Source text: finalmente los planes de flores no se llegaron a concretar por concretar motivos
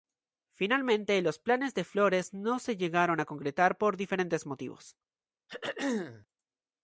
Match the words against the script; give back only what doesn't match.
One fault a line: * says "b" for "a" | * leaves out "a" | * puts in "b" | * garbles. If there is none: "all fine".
* says "diferentes" for "concretar"